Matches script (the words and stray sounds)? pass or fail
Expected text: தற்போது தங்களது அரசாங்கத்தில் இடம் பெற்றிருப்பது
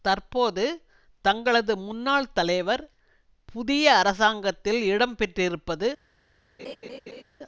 fail